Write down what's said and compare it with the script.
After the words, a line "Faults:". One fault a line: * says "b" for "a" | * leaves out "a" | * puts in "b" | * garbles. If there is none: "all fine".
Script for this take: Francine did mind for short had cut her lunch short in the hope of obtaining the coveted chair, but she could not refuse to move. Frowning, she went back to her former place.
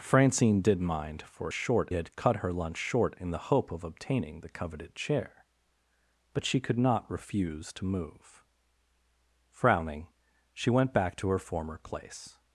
Francine did mind for short had cut her lunch short in the hope of obtaining the coveted chair, but she could not refuse to move. Frowning, she went back to her former place.
Faults:
all fine